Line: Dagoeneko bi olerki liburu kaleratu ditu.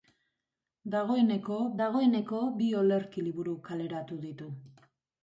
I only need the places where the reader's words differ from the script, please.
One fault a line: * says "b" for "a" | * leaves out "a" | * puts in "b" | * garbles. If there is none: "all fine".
* puts in "dagoeneko"